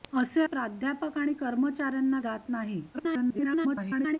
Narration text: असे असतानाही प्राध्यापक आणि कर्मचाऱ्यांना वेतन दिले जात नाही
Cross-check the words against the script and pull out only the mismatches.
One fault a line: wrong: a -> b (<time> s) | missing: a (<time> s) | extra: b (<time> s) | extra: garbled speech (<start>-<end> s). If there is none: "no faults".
missing: असतानाही (0.4 s)
missing: वेतन दिले (2.2 s)
extra: garbled speech (2.9-4.2 s)